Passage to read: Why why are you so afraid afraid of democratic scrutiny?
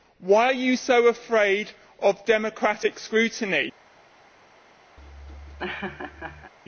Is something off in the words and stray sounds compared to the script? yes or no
yes